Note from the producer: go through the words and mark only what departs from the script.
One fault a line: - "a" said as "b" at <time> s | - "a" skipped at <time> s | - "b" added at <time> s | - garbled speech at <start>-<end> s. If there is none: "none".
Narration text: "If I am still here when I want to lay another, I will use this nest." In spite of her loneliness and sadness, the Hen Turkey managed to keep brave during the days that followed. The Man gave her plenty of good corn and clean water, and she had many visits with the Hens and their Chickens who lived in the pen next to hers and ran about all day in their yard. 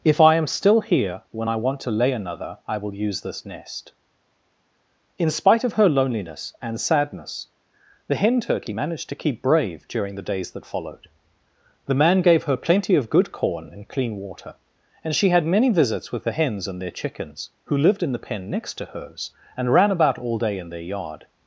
none